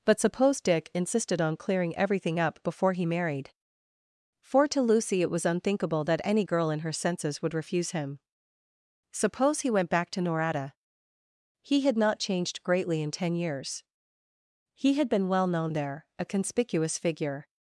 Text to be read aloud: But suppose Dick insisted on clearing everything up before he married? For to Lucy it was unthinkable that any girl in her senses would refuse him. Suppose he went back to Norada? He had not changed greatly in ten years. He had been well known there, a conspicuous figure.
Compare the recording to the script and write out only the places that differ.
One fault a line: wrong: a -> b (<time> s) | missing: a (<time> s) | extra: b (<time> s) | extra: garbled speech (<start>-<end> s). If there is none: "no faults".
no faults